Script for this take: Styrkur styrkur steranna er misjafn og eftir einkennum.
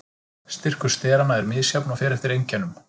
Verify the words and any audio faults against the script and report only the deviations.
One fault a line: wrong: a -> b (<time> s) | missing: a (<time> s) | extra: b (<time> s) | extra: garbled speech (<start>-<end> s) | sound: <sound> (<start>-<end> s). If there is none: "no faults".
missing: styrkur (0.9 s)
extra: fer (2.0 s)